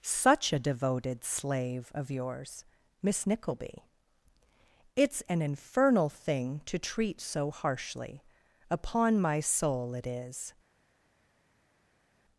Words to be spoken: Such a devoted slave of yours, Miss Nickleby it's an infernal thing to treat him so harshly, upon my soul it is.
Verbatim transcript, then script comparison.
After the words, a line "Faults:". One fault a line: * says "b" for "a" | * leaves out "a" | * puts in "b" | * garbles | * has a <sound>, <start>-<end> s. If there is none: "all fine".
Such a devoted slave of yours, Miss Nickleby it's an infernal thing to treat so harshly, upon my soul it is.
Faults:
* leaves out "him"